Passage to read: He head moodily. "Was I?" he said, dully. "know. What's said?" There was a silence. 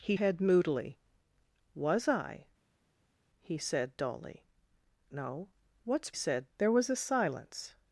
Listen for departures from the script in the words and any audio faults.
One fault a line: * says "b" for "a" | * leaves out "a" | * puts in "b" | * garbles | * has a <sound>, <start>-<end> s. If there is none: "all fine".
all fine